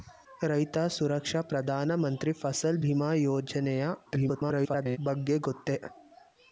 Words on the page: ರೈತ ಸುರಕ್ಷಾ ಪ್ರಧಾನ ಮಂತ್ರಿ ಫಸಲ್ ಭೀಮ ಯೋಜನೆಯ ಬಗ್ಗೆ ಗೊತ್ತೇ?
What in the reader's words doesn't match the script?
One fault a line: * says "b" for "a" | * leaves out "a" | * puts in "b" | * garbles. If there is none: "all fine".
* garbles